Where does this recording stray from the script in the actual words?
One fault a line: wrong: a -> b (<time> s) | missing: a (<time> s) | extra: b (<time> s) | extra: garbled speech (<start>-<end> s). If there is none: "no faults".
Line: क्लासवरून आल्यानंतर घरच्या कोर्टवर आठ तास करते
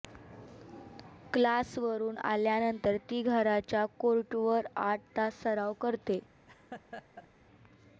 extra: ती (3.1 s)
extra: सराव (5.4 s)